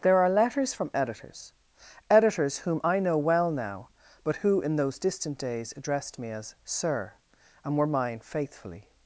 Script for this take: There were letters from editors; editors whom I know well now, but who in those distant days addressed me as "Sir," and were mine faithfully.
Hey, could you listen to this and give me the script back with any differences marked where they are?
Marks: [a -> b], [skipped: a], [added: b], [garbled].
There [were -> are] letters from editors; editors whom I know well now, but who in those distant days addressed me as "Sir," and were mine faithfully.